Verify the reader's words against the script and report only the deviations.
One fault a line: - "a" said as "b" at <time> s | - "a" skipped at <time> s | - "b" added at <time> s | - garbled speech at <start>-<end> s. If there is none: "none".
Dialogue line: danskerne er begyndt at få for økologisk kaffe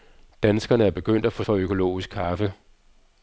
none